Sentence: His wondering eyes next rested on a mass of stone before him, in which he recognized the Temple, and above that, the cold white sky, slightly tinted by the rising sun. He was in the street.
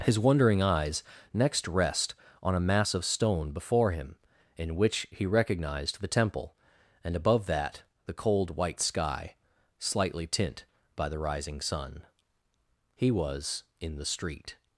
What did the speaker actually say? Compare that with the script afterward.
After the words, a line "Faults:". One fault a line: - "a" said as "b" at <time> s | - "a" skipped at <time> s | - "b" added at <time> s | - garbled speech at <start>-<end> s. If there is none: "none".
His wondering eyes next rest on a mass of stone before him, in which he recognized the Temple, and above that, the cold white sky, slightly tint by the rising sun. He was in the street.
Faults:
- "rested" said as "rest" at 1.7 s
- "tinted" said as "tint" at 10.2 s